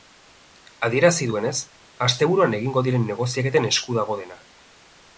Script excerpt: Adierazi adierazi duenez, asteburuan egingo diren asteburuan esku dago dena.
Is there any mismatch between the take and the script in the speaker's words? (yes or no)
yes